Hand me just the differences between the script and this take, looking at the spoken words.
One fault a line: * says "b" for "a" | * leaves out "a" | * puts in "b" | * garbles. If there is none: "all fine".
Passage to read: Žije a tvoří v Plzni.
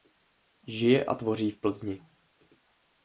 all fine